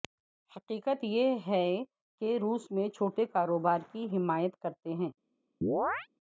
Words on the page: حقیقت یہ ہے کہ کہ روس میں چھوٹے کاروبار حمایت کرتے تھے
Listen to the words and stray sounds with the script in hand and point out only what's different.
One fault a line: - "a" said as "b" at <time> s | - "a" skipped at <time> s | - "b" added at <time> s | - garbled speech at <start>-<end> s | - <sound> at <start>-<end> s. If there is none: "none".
- "کہ" skipped at 2.4 s
- "کی" added at 3.9 s
- "تھے" said as "ہیں" at 4.9 s
- chirp at 5.6-6.1 s